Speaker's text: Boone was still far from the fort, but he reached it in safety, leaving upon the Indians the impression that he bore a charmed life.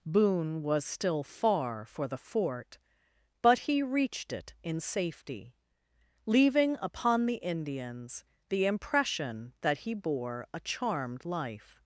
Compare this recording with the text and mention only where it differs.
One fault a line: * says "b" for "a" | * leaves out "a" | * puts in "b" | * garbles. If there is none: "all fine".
* says "for" for "from"